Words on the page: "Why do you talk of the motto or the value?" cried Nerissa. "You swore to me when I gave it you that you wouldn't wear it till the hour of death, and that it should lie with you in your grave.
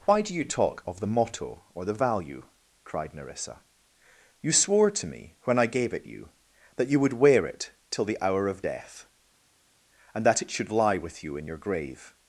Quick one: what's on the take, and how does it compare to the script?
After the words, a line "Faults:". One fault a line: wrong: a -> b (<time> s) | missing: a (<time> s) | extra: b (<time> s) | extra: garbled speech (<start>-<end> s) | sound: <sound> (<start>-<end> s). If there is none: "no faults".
"Why do you talk of the motto or the value?" cried Nerissa. "You swore to me when I gave it you that you would wear it till the hour of death, and that it should lie with you in your grave.
Faults:
wrong: wouldn't -> would (7.0 s)